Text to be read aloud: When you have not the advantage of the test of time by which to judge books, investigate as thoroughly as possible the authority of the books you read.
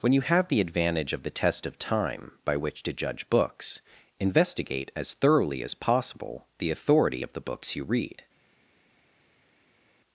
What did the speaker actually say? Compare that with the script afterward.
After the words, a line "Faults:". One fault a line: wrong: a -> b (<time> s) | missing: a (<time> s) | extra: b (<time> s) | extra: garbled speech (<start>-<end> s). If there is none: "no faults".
When you have the advantage of the test of time by which to judge books, investigate as thoroughly as possible the authority of the books you read.
Faults:
missing: not (0.5 s)